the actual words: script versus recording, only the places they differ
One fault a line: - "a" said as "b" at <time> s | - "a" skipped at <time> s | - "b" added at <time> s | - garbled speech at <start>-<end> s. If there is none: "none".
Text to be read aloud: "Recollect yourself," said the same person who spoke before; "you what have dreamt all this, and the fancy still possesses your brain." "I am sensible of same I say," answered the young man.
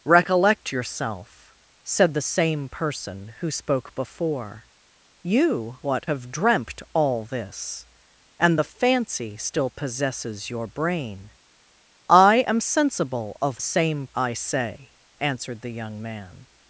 none